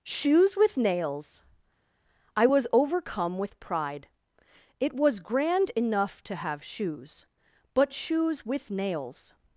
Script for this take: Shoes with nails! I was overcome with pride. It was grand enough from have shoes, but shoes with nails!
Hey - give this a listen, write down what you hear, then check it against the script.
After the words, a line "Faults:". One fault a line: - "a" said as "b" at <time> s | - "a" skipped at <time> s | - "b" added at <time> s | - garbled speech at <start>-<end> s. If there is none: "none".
Shoes with nails! I was overcome with pride. It was grand enough to have shoes, but shoes with nails!
Faults:
- "from" said as "to" at 6.2 s